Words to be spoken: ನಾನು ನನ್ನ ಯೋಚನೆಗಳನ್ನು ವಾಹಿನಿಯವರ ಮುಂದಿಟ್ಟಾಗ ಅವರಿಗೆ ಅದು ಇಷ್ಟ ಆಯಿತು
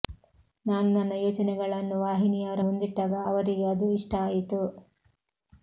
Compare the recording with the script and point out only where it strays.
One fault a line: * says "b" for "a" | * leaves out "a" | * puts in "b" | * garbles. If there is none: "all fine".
all fine